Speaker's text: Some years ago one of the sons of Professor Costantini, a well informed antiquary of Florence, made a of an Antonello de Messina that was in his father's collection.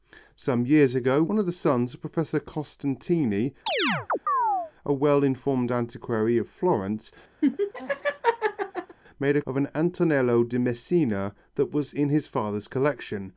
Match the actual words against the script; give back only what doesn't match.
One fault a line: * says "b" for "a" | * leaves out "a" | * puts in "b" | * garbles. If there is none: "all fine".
all fine